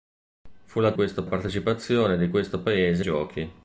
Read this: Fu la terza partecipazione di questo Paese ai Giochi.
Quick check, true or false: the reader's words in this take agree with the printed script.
false